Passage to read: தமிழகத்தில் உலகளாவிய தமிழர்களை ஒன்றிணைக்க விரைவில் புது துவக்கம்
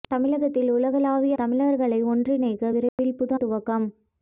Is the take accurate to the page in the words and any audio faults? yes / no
no